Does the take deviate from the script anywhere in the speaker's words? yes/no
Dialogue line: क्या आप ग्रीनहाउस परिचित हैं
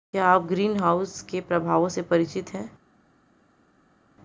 yes